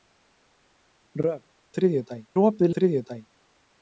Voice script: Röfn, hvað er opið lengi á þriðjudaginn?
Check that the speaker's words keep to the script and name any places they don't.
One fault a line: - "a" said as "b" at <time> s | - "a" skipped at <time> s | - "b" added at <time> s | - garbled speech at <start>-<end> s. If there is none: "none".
- "hvað" said as "þriðjudaginn" at 1.8 s
- "lengi" skipped at 2.7 s